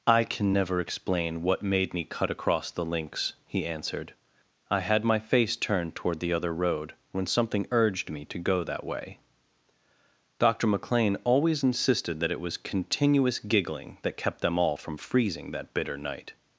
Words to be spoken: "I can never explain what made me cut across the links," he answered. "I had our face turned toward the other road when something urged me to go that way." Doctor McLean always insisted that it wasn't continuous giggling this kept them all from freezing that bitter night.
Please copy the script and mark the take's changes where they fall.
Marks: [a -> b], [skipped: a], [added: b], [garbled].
"I can never explain what made me cut across the links," he answered. "I had [our -> my] face turned toward the other road when something urged me to go that way." Doctor McLean always insisted that it [wasn't -> was] continuous giggling [this -> that] kept them all from freezing that bitter night.